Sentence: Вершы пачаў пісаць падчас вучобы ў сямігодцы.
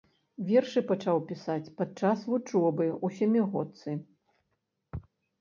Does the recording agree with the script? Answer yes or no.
yes